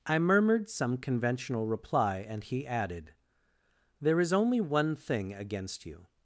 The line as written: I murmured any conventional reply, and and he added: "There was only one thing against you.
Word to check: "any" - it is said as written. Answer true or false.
false